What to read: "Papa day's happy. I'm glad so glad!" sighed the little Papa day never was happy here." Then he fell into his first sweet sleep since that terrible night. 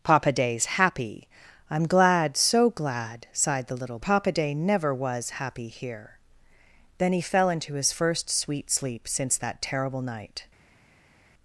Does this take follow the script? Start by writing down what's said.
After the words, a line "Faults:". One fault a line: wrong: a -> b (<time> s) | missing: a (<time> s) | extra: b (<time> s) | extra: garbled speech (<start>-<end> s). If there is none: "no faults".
"Papa day's happy. I'm glad so glad!" sighed the little Papa day never was happy here." Then he fell into his first sweet sleep since that terrible night.
Faults:
no faults